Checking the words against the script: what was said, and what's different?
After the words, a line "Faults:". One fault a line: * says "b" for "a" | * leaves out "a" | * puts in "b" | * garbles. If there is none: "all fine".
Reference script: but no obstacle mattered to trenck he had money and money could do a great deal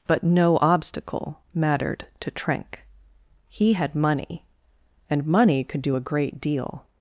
but no obstacle mattered to trenck he had money and money could do a great deal
Faults:
all fine